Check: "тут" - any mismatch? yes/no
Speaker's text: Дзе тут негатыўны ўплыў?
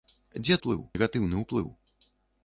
yes